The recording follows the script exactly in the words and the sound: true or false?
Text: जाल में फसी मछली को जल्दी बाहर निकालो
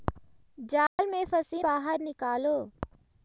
false